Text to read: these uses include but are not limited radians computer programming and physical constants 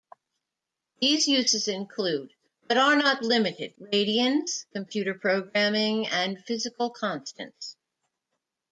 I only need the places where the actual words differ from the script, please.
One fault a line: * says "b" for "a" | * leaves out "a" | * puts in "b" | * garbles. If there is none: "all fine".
all fine